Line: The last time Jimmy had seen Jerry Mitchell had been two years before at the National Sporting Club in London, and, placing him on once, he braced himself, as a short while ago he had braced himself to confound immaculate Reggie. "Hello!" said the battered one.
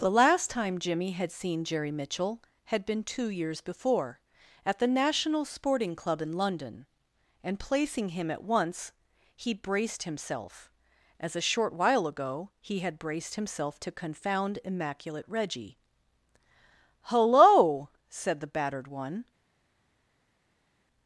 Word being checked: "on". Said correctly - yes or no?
no